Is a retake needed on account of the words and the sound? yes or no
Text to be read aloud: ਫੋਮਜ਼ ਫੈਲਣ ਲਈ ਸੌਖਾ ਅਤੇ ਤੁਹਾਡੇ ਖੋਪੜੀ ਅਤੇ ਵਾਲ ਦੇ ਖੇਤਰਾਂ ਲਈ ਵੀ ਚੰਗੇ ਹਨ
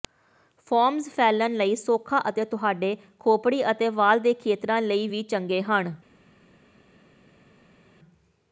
no